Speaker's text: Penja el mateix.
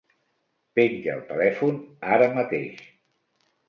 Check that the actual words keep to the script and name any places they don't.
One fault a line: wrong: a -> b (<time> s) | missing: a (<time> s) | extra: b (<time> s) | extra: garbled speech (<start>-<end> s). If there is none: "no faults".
extra: telèfon ara (1.3 s)